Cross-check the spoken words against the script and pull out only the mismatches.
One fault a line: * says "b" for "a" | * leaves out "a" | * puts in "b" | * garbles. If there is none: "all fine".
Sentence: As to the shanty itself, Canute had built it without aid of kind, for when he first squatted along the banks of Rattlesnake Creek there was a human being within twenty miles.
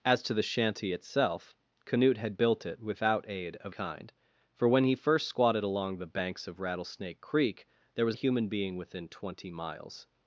all fine